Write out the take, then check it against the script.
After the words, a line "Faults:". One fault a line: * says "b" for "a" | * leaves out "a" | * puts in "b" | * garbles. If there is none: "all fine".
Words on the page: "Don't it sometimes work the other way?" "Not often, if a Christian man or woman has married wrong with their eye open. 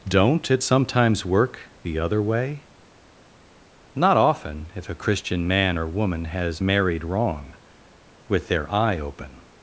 "Don't it sometimes work the other way?" "Not often, if a Christian man or woman has married wrong with their eye open.
Faults:
all fine